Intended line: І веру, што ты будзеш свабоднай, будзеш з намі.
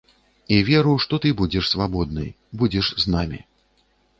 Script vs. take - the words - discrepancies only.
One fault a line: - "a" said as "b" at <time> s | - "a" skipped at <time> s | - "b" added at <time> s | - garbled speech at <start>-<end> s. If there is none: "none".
none